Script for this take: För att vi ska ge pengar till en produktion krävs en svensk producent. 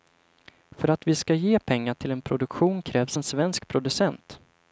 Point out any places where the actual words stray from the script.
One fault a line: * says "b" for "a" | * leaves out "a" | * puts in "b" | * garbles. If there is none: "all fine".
all fine